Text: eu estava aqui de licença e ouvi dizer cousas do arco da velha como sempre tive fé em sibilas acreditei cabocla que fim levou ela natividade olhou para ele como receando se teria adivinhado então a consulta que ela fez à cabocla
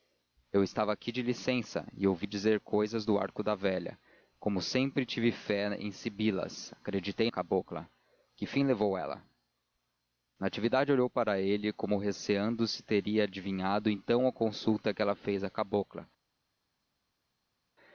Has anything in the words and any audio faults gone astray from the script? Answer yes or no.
no